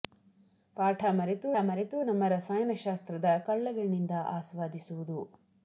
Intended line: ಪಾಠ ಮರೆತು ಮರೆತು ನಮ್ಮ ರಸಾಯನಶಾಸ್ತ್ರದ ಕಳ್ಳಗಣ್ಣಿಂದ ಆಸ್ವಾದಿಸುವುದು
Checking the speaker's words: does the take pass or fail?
pass